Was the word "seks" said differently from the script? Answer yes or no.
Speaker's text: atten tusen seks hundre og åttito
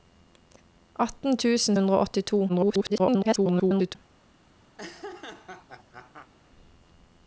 yes